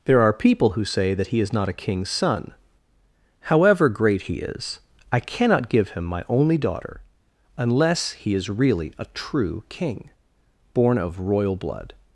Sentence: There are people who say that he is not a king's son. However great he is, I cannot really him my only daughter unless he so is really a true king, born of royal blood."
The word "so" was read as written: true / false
false